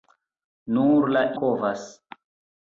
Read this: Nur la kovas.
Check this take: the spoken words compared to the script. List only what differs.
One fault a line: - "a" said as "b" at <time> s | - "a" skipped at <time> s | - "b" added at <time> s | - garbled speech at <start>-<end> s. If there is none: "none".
none